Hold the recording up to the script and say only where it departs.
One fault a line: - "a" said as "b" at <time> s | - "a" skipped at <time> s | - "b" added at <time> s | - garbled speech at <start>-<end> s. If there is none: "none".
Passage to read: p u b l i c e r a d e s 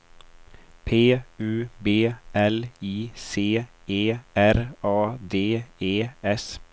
none